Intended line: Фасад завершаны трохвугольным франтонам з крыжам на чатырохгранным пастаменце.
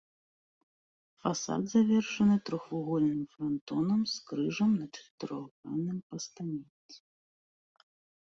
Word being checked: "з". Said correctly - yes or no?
yes